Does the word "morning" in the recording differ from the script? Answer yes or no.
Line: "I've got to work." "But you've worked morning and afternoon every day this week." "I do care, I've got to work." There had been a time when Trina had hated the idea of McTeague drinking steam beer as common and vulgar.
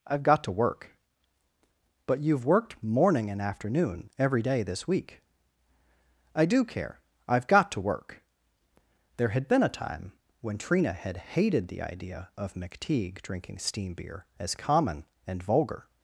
no